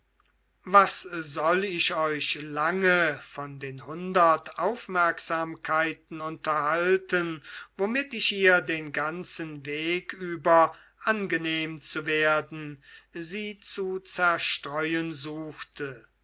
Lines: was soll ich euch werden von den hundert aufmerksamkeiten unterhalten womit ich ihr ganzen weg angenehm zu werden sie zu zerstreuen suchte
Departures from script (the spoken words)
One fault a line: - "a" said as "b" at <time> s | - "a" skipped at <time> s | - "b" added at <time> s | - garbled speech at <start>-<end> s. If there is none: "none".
- "werden" said as "lange" at 2.4 s
- "den" added at 8.6 s
- "über" added at 10.1 s